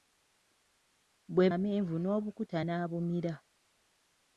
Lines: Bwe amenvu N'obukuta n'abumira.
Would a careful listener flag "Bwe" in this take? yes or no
no